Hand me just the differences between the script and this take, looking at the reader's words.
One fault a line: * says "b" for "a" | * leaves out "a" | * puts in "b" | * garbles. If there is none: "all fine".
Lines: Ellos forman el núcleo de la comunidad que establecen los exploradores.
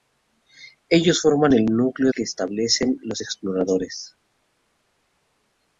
* leaves out "de la comunidad"